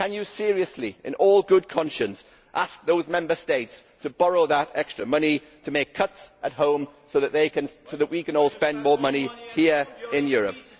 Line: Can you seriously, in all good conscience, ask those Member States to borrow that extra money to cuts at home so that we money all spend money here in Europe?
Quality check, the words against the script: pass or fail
fail